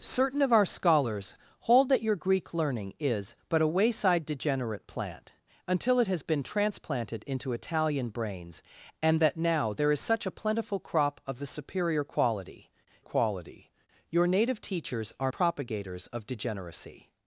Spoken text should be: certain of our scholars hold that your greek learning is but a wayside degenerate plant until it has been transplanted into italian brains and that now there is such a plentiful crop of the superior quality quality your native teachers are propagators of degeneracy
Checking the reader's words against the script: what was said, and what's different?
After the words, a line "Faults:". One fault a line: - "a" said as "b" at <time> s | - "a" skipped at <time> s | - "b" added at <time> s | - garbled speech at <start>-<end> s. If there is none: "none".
certain of our scholars hold that your greek learning is but a wayside degenerate plant until it has been transplanted into italian brains and that now there is such a plentiful crop of the superior quality quality your native teachers are propagators of degeneracy
Faults:
none